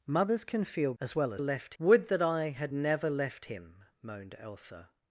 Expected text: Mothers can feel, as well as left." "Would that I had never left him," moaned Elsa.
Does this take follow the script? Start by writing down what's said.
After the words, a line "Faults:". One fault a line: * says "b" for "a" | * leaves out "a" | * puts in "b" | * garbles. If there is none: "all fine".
Mothers can feel, as well as left." "Would that I had never left him," moaned Elsa.
Faults:
all fine